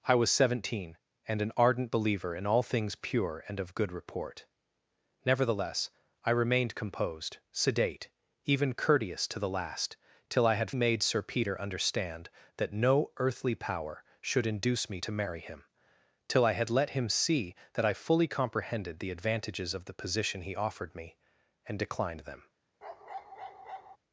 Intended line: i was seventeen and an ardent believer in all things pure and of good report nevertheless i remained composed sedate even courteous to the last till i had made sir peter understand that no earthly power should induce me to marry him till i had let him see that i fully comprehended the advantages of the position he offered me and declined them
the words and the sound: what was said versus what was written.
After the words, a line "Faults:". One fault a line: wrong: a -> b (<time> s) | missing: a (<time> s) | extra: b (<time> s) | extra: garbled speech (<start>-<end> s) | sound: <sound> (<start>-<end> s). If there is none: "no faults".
i was seventeen and an ardent believer in all things pure and of good report nevertheless i remained composed sedate even courteous to the last till i had made sir peter understand that no earthly power should induce me to marry him till i had let him see that i fully comprehended the advantages of the position he offered me and declined them
Faults:
sound: bark (22.8-24.0 s)